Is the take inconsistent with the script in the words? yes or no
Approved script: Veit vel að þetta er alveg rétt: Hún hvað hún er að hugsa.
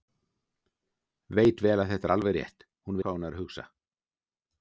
no